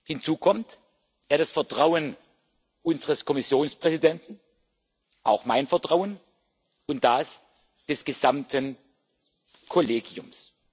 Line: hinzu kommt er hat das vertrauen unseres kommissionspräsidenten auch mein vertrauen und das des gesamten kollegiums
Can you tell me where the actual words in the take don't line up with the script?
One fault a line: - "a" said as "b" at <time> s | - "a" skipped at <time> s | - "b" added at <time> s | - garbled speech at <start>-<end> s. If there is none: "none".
none